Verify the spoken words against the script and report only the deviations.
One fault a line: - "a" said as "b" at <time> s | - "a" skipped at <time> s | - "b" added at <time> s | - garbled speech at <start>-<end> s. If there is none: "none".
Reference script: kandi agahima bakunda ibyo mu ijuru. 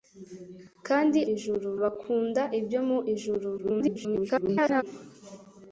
- "agahima" said as "ijuru" at 1.3 s
- garbled speech at 3.6-4.8 s